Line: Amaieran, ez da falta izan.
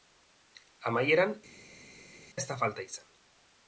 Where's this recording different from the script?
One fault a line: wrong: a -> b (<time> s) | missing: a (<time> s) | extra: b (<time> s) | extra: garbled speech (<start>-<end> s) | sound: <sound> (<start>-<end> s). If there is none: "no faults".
no faults